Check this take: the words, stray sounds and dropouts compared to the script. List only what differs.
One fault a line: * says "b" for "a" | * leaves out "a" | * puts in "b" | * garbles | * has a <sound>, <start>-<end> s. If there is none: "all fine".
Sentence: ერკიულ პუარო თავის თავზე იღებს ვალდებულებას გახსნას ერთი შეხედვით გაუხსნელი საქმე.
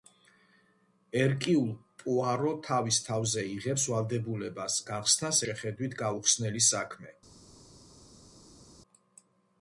* leaves out "ერთი"